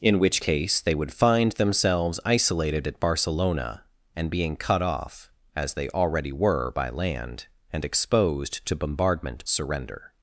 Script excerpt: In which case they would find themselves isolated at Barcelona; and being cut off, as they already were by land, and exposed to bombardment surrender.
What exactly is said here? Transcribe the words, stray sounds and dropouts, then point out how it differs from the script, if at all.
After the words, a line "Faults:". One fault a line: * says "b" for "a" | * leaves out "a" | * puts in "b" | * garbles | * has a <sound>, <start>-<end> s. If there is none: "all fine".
In which case they would find themselves isolated at Barcelona; and being cut off, as they already were by land, and exposed to bombardment surrender.
Faults:
all fine